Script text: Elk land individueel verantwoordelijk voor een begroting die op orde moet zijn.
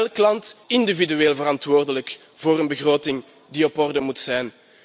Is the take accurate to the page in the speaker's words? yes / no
yes